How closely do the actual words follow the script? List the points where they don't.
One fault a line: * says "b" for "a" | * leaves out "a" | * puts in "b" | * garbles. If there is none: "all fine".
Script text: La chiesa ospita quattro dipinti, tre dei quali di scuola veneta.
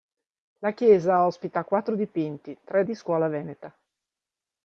* leaves out "dei quali"